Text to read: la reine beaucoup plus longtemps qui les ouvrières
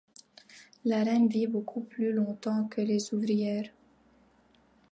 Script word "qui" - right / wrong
wrong